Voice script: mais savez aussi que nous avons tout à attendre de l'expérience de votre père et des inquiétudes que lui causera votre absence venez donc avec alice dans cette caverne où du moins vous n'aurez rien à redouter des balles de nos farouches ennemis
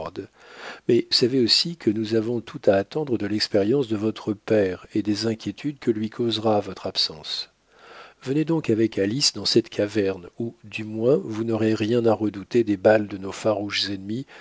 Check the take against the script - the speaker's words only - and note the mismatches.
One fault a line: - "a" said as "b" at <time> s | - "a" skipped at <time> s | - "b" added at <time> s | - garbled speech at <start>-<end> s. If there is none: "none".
none